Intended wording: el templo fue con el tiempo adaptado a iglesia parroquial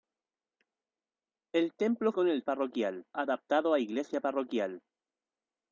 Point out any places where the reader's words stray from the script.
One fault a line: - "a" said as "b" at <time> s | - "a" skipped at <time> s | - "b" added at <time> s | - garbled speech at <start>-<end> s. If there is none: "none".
- "fue" skipped at 2.1 s
- "tiempo" said as "parroquial" at 2.4 s